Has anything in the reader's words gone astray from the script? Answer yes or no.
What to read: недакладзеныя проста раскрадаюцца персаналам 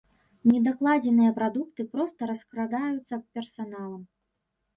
yes